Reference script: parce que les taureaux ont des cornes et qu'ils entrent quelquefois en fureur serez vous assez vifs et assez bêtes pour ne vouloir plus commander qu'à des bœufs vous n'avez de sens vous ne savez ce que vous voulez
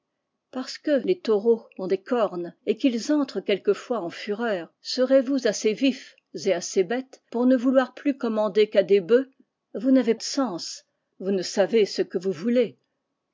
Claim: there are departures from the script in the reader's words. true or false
false